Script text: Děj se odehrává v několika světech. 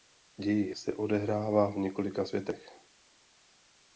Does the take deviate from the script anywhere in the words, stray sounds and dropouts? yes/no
no